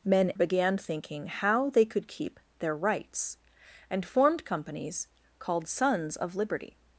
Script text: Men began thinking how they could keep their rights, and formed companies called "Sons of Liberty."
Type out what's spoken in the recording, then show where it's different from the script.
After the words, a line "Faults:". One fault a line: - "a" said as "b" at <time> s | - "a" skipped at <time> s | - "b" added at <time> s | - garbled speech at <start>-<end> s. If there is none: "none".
Men began thinking how they could keep their rights, and formed companies called "Sons of Liberty."
Faults:
none